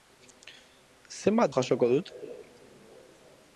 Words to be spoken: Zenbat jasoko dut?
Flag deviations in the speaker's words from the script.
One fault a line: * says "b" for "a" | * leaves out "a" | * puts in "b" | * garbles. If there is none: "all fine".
all fine